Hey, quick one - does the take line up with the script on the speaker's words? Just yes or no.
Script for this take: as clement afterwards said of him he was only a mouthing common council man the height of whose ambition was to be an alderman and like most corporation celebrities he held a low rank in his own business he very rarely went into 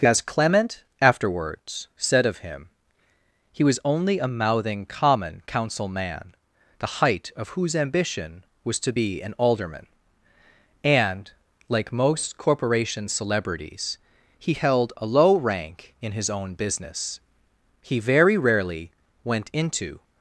yes